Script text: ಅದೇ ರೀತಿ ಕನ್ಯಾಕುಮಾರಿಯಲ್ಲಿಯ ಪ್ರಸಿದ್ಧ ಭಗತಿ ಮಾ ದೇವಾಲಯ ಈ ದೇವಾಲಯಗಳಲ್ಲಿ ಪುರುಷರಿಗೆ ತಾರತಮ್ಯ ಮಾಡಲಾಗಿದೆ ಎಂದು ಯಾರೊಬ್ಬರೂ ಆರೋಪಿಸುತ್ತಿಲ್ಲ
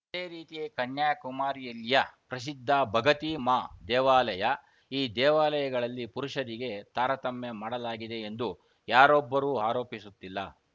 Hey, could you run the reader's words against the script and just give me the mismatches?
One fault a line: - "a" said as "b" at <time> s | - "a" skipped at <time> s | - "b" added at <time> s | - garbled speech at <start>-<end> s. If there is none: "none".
none